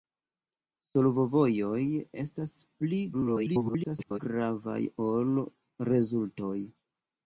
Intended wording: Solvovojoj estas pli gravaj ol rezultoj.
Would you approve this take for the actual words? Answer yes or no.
no